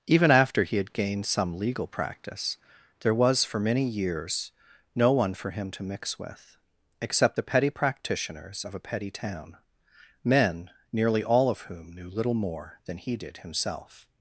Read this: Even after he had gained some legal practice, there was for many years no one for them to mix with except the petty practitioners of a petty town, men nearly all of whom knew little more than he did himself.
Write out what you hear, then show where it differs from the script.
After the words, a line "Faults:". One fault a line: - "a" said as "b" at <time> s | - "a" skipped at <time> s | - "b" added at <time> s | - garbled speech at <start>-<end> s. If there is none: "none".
Even after he had gained some legal practice, there was for many years no one for him to mix with except the petty practitioners of a petty town, men nearly all of whom knew little more than he did himself.
Faults:
- "them" said as "him" at 5.5 s